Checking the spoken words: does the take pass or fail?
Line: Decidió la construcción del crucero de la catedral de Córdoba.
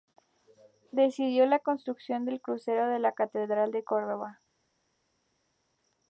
pass